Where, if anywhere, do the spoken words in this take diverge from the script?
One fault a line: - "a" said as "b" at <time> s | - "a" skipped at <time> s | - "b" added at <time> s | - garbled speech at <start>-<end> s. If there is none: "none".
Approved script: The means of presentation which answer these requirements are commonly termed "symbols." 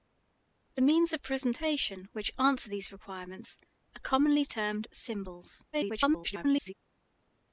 - garbled speech at 5.7-6.7 s